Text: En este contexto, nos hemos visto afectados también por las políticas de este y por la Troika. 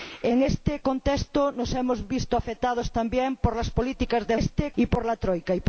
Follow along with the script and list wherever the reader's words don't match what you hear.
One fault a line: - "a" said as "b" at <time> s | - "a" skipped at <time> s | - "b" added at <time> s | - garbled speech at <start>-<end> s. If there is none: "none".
none